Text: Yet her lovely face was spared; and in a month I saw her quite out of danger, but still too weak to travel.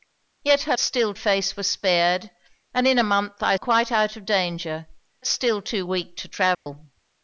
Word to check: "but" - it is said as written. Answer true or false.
false